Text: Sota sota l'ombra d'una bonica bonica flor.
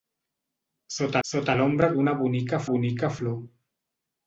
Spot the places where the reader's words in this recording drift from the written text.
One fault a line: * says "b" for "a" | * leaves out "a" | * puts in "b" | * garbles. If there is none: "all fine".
all fine